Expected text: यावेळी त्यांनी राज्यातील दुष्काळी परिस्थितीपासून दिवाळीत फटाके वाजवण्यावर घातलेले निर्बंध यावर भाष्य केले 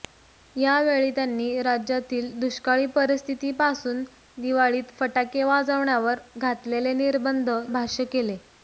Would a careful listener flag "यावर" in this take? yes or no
yes